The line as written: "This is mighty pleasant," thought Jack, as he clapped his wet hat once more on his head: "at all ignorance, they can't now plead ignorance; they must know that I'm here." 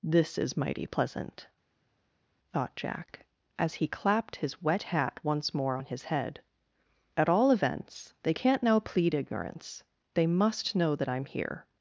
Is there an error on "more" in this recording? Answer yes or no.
no